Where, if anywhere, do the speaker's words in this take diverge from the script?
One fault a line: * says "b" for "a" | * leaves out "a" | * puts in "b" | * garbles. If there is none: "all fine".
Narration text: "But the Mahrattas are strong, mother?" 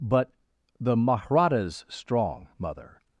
* leaves out "are"